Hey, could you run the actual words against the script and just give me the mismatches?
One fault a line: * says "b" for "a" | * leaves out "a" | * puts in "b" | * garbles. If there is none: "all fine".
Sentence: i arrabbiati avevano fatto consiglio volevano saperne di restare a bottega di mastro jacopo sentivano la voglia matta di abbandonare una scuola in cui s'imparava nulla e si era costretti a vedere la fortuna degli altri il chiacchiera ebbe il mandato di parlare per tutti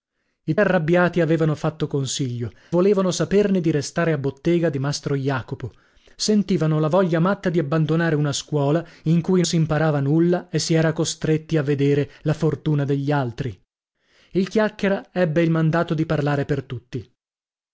all fine